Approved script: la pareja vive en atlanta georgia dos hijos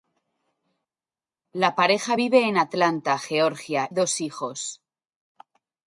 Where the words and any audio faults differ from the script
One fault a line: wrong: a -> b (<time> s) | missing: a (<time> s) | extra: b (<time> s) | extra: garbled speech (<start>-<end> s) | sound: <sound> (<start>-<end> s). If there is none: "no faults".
no faults